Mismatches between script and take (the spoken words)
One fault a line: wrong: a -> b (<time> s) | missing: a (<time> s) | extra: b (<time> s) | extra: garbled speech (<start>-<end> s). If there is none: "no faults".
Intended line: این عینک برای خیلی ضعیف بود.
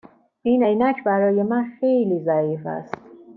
extra: من (1.4 s)
wrong: بود -> است (2.7 s)